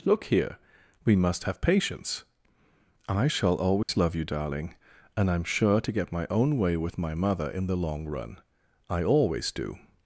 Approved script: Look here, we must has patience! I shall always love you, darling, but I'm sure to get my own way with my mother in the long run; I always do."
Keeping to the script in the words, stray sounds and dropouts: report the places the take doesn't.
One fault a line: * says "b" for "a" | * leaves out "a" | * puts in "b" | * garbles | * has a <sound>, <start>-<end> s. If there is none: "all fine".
* says "have" for "has"
* has a dropout, 3.8-3.9 s
* says "and" for "but"